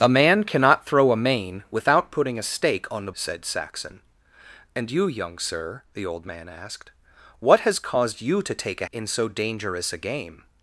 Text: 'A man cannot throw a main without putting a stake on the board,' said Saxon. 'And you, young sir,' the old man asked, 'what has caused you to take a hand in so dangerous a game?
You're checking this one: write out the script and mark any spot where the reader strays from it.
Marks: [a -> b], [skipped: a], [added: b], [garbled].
'A man cannot throw a main without putting a stake on the [skipped: board,'] said Saxon. 'And you, young sir,' the old man asked, 'what has caused you to take a [skipped: hand] in so dangerous a game?